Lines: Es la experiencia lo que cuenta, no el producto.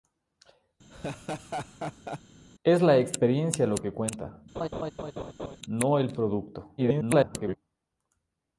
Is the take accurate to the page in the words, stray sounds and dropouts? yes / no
no